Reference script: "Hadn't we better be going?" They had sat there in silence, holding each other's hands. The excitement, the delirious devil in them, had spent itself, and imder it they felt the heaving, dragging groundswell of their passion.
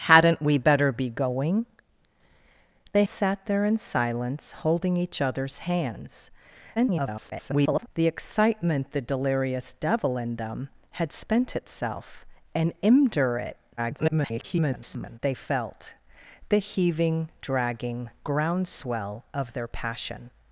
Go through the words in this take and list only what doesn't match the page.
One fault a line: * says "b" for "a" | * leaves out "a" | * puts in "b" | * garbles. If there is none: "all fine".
* leaves out "had"
* garbles
* garbles